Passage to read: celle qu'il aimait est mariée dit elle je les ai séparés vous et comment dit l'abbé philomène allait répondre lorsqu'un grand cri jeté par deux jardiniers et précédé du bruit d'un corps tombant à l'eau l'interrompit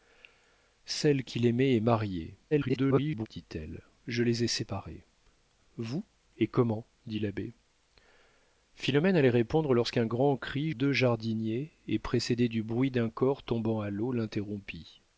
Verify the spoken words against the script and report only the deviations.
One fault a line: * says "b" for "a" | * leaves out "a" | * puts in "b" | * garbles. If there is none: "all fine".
* garbles
* leaves out "jeté par"